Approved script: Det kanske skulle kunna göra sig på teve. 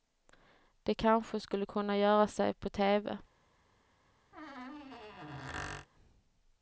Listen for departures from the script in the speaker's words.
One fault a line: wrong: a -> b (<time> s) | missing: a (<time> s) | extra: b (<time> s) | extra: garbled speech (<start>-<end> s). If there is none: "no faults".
no faults